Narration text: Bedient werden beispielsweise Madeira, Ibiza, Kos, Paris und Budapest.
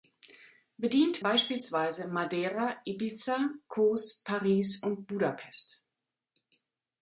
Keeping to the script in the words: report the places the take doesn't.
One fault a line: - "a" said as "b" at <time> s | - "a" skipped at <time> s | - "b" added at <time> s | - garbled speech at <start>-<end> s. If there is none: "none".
- "werden" skipped at 1.2 s